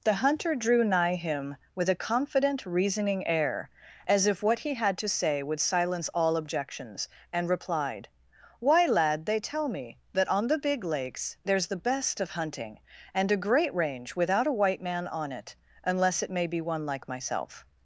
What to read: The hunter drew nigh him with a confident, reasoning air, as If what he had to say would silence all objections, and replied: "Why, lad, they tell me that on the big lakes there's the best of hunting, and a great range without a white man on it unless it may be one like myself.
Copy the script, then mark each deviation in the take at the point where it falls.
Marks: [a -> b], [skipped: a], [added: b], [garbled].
The hunter drew nigh him with a confident, reasoning air, as If what he had to say would silence all objections, and replied: "Why, lad, they tell me that on the big lakes there's the best of hunting, and a great range without a white man on it unless it may be one like myself.